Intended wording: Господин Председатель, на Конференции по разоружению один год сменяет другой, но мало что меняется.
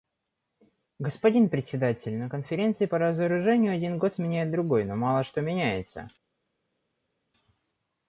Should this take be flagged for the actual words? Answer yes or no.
no